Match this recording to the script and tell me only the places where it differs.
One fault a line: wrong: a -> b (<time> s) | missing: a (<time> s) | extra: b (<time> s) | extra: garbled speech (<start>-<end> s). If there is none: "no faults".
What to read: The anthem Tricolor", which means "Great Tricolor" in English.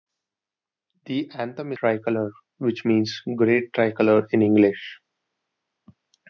no faults